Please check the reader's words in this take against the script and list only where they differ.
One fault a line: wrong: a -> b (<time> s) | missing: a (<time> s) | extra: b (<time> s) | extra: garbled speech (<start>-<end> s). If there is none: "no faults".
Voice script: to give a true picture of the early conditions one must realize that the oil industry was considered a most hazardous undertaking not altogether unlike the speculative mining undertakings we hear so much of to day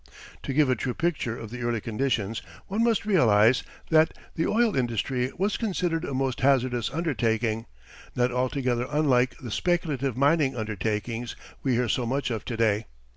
no faults